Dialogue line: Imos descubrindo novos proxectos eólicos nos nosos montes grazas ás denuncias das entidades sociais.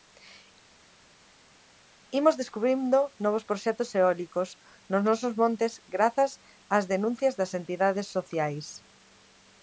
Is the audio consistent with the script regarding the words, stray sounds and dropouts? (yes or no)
yes